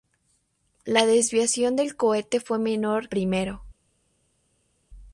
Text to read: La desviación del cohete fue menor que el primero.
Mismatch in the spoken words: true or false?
true